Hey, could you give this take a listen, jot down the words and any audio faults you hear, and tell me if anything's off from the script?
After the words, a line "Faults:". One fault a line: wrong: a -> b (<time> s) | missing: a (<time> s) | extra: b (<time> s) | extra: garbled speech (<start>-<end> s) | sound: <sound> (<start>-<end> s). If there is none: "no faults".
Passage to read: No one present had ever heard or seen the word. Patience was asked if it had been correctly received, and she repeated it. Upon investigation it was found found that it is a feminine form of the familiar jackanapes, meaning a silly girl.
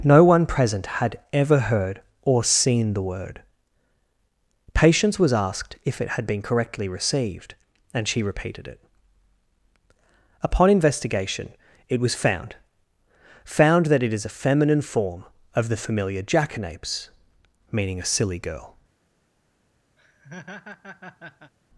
No one present had ever heard or seen the word. Patience was asked if it had been correctly received, and she repeated it. Upon investigation it was found found that it is a feminine form of the familiar jackanapes, meaning a silly girl.
Faults:
sound: laugh (20.0-21.5 s)